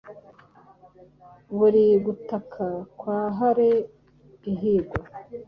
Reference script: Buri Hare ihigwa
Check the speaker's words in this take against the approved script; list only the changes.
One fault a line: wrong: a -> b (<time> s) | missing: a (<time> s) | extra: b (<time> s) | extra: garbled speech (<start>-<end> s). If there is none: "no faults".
extra: gutaka kwa (2.0 s)